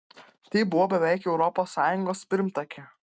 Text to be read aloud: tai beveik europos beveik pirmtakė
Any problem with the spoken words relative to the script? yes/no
yes